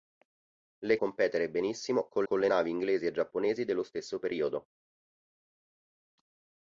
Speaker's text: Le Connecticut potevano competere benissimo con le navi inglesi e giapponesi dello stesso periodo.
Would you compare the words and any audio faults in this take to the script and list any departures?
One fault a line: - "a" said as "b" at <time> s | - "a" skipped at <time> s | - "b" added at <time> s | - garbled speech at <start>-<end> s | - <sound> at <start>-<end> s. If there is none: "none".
- "Connecticut potevano" skipped at 1.0 s
- "con" added at 2.2 s